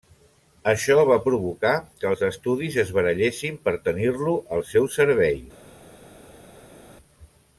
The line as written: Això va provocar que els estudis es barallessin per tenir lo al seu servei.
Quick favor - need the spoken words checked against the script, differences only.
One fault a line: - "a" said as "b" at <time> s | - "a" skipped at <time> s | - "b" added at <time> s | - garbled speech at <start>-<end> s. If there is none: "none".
none